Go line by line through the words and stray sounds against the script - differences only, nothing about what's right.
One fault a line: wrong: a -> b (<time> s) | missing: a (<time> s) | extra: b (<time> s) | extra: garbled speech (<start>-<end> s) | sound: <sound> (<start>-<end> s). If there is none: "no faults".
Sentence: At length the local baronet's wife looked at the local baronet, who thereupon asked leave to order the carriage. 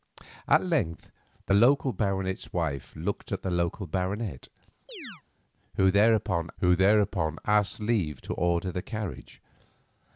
sound: chirp (4.9-5.2 s)
extra: who thereupon (6.6 s)